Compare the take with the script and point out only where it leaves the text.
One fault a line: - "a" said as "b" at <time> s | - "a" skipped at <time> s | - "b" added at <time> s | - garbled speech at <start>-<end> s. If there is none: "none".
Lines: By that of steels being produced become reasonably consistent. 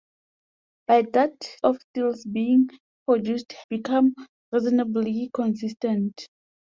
none